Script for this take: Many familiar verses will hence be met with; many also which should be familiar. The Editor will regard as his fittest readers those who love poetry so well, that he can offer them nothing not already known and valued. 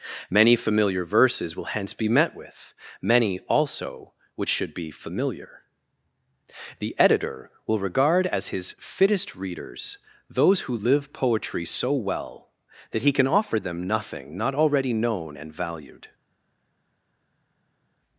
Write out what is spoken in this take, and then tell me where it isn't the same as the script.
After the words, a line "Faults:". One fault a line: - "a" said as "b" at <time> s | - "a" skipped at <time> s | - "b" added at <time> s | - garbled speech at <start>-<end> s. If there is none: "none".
Many familiar verses will hence be met with; many also which should be familiar. The Editor will regard as his fittest readers those who live poetry so well, that he can offer them nothing not already known and valued.
Faults:
- "love" said as "live" at 10.7 s